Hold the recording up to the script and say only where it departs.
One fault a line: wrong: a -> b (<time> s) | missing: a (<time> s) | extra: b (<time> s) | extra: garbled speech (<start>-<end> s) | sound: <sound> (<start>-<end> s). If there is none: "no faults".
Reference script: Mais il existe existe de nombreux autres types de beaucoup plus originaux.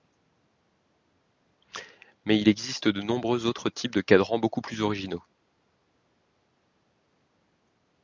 missing: existe (2.9 s)
extra: cadrans (4.0 s)